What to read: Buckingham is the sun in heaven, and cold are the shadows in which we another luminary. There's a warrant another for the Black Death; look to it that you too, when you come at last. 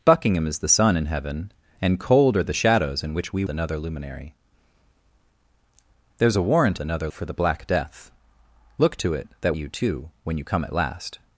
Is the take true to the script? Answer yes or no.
yes